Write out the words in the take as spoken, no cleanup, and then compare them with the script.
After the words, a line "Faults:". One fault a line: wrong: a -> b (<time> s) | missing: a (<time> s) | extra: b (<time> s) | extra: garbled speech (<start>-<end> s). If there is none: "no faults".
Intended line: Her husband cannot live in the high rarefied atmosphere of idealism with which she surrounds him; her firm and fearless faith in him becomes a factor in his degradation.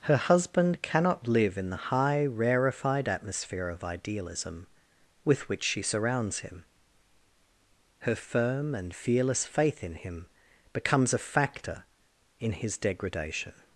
Her husband cannot live in the high rarefied atmosphere of idealism with which she surrounds him; her firm and fearless faith in him becomes a factor in his degradation.
Faults:
no faults